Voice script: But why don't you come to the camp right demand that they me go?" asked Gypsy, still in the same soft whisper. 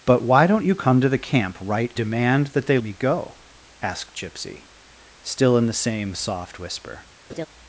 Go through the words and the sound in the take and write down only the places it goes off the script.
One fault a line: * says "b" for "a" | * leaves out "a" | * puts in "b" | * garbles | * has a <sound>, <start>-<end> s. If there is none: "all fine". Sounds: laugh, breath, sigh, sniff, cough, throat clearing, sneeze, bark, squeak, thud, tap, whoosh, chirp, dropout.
* has a laugh, 7.3-7.5 s